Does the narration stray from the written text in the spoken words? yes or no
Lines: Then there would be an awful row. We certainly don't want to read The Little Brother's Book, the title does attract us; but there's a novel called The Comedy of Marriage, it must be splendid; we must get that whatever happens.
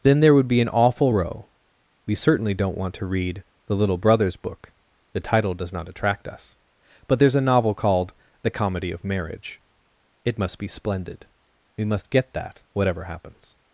yes